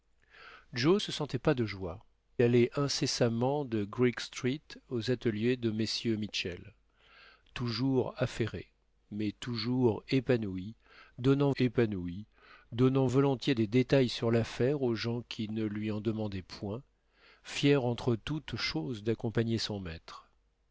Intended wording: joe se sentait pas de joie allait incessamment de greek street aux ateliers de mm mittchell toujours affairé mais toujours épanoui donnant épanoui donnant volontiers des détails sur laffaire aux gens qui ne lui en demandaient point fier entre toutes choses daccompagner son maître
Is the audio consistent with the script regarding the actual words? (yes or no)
yes